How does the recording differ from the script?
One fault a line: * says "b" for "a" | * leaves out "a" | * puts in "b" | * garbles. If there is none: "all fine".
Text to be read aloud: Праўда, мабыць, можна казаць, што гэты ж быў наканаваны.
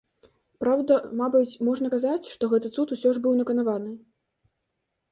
* puts in "цуд усё"